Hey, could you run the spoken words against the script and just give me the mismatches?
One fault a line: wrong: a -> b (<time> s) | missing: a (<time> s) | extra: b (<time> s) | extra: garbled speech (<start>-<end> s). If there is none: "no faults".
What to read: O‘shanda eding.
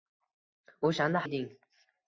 no faults